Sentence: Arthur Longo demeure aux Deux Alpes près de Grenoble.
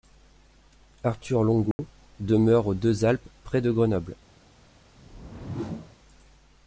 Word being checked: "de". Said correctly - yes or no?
yes